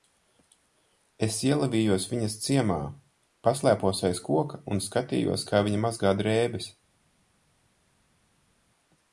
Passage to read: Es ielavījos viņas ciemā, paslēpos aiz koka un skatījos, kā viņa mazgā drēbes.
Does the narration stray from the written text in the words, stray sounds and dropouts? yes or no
no